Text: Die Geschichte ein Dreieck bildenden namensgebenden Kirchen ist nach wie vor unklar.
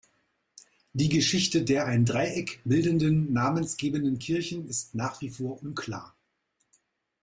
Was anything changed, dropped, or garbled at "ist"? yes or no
no